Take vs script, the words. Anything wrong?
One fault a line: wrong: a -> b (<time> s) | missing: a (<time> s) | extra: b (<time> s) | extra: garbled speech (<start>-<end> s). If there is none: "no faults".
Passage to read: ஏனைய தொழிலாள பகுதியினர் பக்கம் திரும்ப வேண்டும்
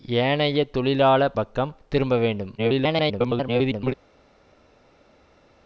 missing: பகுதியினர் (1.3 s)
extra: garbled speech (2.6-3.9 s)